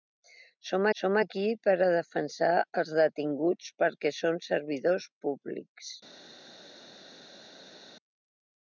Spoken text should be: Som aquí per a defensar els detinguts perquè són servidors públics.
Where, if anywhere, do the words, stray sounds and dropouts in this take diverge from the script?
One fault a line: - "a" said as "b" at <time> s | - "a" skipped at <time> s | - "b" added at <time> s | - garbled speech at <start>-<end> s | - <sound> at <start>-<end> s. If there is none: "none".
- "som" added at 1.0 s